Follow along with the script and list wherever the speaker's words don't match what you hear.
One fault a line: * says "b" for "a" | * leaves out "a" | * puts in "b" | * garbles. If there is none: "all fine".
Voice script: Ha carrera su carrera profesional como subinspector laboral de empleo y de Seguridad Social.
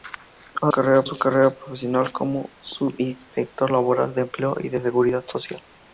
all fine